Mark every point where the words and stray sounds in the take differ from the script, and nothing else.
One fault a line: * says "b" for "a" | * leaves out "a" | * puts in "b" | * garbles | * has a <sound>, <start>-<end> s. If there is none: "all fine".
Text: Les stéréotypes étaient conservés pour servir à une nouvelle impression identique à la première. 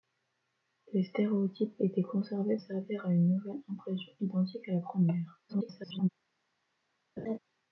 * leaves out "pour"
* garbles
* has a laugh, 7.2-7.4 s